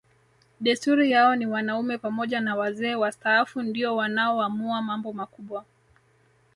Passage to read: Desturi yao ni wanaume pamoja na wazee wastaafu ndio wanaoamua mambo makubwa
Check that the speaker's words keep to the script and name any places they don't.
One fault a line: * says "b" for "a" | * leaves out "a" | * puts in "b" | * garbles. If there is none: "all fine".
all fine